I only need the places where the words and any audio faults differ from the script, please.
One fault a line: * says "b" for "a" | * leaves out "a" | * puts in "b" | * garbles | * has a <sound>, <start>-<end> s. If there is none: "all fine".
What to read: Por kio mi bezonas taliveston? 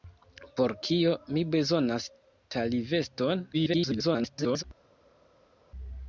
* garbles